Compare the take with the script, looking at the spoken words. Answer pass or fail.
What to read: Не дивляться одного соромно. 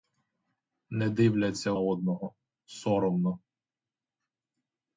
pass